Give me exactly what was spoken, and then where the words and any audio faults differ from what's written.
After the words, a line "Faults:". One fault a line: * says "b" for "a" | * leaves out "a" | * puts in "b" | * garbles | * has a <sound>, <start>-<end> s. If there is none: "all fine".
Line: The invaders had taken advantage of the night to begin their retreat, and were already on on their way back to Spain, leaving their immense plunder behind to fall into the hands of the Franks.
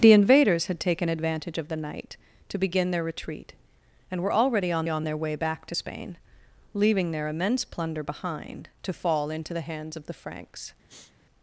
The invaders had taken advantage of the night to begin their retreat, and were already on on their way back to Spain, leaving their immense plunder behind to fall into the hands of the Franks.
Faults:
* has a sniff, 10.9-11.1 s